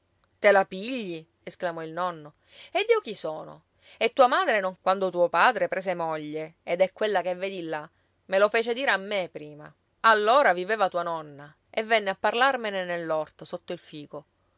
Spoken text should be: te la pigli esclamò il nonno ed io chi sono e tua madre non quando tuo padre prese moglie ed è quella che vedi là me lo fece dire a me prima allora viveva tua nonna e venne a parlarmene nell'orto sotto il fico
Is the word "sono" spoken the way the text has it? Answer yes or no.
yes